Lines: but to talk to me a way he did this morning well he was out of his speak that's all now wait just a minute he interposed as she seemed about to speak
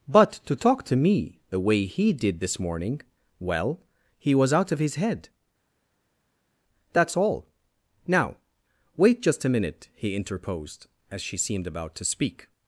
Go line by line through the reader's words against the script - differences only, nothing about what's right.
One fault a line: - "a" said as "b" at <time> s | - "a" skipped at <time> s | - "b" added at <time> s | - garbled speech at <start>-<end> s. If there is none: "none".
- "a" said as "the" at 1.5 s
- "speak" said as "head" at 5.0 s